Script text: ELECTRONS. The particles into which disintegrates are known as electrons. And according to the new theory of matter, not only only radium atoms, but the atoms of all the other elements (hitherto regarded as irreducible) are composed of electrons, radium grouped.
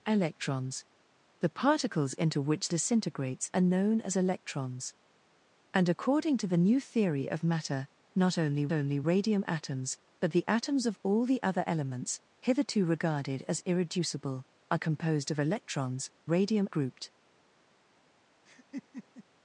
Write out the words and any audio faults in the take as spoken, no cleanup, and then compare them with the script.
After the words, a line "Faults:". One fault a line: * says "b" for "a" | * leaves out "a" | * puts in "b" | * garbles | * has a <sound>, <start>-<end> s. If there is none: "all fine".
ELECTRONS. The particles into which disintegrates are known as electrons. And according to the new theory of matter, not only only radium atoms, but the atoms of all the other elements (hitherto regarded as irreducible) are composed of electrons, radium grouped.
Faults:
* has a laugh, 18.5-19.2 s